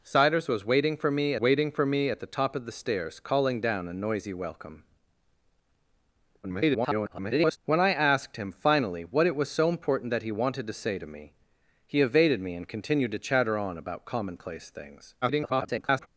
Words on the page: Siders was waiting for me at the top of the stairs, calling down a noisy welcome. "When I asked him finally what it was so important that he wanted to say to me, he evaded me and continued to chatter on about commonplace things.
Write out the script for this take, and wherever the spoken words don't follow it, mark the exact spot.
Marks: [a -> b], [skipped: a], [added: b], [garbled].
Siders was waiting for me [added: waiting for me] at the top of the stairs, calling down a noisy welcome. [garbled] "When I asked him finally what it was so important that he wanted to say to me, he evaded me and continued to chatter on about commonplace things. [garbled]